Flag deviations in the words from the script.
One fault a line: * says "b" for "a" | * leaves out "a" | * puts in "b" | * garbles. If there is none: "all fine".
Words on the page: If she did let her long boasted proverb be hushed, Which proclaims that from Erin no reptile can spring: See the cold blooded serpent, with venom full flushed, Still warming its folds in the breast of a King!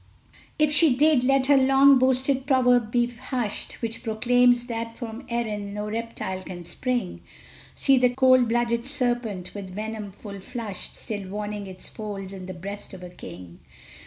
all fine